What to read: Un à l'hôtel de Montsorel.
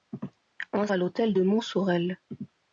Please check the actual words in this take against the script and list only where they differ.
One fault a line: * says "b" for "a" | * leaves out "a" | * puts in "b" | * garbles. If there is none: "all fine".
all fine